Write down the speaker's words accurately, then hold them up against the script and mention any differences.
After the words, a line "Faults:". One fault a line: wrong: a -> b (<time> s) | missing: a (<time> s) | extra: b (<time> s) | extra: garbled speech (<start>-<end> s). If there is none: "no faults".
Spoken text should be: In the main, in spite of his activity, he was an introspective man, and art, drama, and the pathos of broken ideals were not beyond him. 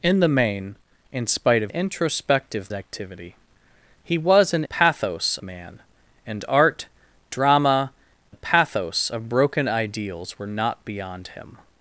In the main, in spite of introspective activity, he was an pathos man, and art, drama, the pathos of broken ideals were not beyond him.
Faults:
wrong: his -> introspective (1.7 s)
wrong: introspective -> pathos (4.6 s)
missing: and (7.9 s)